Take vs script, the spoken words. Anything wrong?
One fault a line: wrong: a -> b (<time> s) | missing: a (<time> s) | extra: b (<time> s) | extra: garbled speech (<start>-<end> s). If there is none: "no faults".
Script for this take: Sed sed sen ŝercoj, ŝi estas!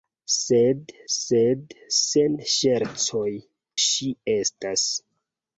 no faults